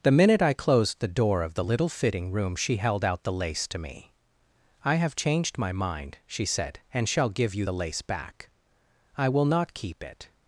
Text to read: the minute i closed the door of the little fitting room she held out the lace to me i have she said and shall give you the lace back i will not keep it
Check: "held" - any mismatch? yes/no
no